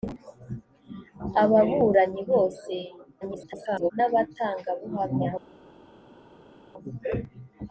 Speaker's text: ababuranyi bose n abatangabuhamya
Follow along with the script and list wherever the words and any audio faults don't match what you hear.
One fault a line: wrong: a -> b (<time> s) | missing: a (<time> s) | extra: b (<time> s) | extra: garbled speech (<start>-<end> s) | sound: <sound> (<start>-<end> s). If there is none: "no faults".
extra: garbled speech (3.2-3.9 s)